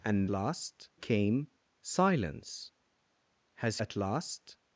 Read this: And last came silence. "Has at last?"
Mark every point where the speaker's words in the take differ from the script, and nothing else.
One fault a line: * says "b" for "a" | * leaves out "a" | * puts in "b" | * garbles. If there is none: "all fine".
all fine